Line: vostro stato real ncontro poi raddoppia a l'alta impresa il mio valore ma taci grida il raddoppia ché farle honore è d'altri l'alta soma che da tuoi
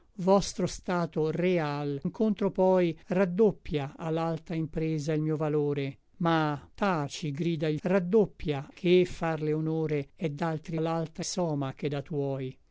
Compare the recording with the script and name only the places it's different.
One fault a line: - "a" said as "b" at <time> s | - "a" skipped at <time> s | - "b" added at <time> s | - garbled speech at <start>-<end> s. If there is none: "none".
none